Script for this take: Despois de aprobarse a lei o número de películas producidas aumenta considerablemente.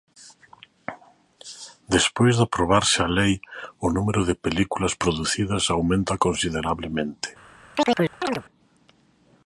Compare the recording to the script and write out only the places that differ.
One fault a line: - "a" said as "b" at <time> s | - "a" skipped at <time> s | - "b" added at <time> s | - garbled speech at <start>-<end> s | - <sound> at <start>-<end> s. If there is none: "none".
- chirp at 7.7-8.4 s